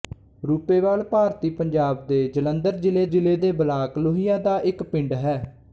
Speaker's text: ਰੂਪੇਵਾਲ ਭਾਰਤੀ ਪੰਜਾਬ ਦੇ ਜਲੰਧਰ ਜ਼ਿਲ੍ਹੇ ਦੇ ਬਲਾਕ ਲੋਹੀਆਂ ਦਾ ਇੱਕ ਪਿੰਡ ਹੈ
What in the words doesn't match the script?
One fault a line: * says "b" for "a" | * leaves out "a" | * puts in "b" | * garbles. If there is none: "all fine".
* puts in "ਜ਼ਿਲ੍ਹੇ"